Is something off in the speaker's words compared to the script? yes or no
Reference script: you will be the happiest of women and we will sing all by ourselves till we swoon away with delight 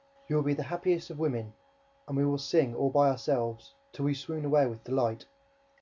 no